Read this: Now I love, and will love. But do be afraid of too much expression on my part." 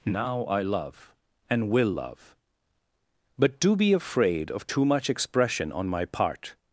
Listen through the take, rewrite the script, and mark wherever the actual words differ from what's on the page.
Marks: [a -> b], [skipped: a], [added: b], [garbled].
Now I love, and will love. But do be afraid of too much expression on my part."